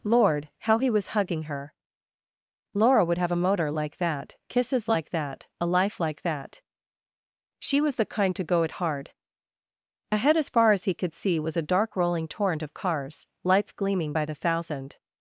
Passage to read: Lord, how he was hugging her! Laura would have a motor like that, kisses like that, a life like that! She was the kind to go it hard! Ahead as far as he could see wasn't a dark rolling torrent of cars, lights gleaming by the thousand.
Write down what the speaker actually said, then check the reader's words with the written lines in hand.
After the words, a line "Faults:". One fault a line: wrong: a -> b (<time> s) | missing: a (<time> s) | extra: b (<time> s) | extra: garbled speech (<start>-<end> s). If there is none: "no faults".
Lord, how he was hugging her! Laura would have a motor like that, kisses like that, a life like that! She was the kind to go it hard! Ahead as far as he could see was a dark rolling torrent of cars, lights gleaming by the thousand.
Faults:
wrong: wasn't -> was (11.4 s)